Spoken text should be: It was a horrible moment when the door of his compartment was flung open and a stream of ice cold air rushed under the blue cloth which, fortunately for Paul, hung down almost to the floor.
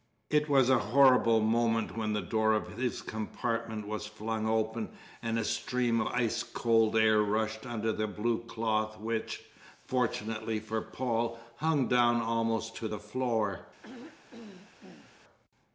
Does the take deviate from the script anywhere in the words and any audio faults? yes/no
yes